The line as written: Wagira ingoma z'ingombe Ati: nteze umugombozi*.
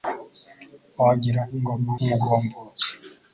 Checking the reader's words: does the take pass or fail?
fail